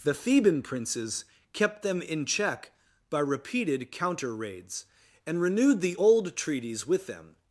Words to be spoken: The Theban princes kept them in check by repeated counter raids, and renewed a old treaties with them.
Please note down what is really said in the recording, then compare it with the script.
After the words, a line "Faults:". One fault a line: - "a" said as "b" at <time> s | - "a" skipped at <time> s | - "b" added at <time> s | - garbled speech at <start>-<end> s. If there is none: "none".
The Theban princes kept them in check by repeated counter raids, and renewed the old treaties with them.
Faults:
- "a" said as "the" at 5.8 s